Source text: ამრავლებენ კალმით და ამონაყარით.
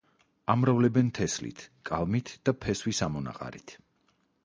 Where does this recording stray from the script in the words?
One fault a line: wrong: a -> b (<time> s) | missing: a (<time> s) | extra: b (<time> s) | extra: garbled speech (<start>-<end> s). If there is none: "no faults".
extra: თესლით (1.2 s)
extra: ფესვის (2.6 s)